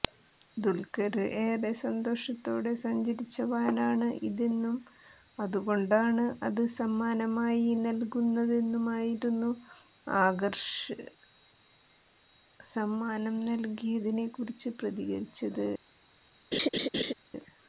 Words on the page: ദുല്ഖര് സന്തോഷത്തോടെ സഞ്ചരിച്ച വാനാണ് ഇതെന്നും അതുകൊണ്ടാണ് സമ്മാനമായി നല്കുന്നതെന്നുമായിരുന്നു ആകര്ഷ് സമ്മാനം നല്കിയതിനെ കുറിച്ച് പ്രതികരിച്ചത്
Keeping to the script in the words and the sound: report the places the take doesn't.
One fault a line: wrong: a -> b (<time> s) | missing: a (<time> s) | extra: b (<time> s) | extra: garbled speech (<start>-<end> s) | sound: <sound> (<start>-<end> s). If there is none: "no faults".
extra: ഏറെ (1.4 s)
extra: അത് (6.4 s)
sound: laugh (16.5-17.1 s)